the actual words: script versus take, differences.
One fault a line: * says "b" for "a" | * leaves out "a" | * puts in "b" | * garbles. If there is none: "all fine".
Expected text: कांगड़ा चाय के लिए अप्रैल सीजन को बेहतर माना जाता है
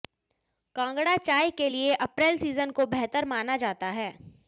all fine